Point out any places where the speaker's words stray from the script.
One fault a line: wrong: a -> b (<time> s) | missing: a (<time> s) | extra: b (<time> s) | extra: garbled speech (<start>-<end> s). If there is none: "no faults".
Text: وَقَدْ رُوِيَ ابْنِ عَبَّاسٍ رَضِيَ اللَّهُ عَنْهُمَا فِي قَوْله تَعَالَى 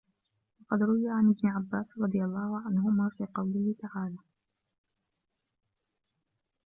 extra: عَنْ (1.1 s)